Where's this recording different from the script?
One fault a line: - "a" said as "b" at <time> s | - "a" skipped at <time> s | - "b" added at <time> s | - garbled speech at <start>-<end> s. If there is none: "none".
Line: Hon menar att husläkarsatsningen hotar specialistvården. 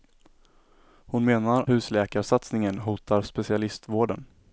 - "att" skipped at 1.6 s